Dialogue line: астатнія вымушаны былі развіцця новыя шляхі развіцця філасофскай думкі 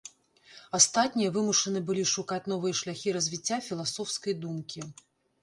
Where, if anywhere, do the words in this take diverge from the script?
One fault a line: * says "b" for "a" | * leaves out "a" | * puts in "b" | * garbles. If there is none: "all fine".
* says "шукаць" for "развіцця"